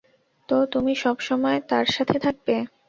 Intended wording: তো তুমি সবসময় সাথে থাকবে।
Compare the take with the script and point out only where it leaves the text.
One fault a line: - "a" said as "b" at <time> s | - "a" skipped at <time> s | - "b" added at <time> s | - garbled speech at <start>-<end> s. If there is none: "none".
- "তার" added at 1.7 s